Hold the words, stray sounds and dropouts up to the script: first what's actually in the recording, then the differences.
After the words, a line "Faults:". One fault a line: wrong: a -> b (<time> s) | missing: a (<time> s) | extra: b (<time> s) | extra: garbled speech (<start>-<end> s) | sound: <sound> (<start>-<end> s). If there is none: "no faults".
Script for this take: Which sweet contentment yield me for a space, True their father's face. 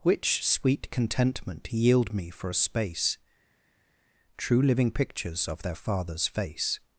Which sweet contentment yield me for a space, True living pictures of their father's face.
Faults:
extra: living pictures of (4.6 s)